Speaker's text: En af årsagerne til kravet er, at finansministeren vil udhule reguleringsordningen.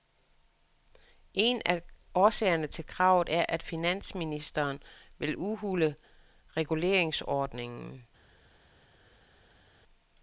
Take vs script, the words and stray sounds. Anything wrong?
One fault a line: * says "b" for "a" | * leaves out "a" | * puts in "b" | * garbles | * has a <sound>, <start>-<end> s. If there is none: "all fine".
all fine